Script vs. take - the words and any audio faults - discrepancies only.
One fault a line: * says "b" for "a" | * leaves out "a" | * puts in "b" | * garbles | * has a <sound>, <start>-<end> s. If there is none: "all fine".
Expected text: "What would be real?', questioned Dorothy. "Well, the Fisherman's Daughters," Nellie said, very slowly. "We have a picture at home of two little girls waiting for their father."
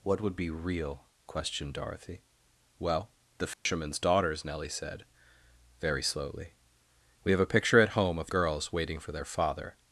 * has a dropout, 3.5-3.7 s
* leaves out "two little"